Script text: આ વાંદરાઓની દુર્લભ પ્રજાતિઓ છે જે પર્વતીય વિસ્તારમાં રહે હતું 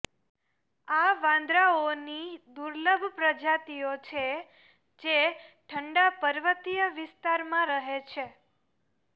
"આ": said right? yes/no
yes